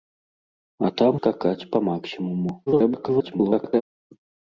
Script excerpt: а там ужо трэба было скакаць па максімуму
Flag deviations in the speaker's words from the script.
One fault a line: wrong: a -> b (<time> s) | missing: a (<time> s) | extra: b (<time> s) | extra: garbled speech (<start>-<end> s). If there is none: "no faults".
missing: ужо трэба было (1.1 s)
extra: garbled speech (2.7-3.8 s)